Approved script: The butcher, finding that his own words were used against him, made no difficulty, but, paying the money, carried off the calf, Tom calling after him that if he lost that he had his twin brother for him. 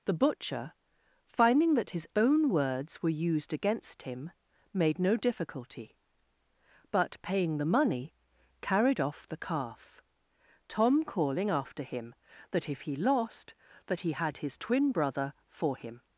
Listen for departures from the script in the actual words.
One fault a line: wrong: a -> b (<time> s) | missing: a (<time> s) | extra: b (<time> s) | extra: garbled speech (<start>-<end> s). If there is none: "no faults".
no faults